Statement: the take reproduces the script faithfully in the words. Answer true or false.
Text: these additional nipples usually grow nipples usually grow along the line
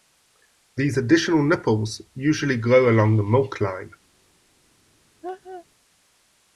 false